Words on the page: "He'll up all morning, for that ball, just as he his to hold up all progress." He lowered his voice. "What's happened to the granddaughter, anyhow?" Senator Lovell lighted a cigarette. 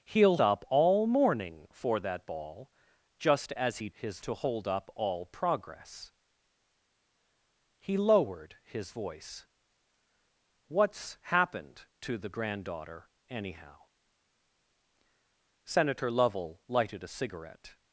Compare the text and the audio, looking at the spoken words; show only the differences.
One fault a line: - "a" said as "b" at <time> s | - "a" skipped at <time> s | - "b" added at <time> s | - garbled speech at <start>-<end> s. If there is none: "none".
none